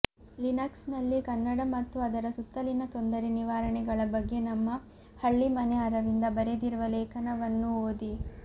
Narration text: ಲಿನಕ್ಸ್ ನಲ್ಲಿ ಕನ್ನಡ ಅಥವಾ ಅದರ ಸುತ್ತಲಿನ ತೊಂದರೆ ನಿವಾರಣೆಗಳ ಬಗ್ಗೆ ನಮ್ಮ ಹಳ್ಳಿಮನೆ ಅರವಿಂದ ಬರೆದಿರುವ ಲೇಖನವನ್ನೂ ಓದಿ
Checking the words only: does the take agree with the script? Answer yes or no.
no